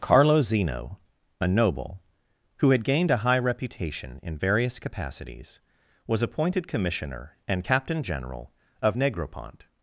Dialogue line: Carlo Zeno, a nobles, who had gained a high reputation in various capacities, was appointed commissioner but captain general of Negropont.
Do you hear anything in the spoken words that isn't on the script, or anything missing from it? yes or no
yes